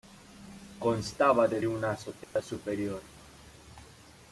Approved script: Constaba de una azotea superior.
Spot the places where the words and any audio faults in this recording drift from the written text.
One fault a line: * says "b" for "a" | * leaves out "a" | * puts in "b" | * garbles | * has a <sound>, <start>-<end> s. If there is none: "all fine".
* has a dropout, 2.2-2.4 s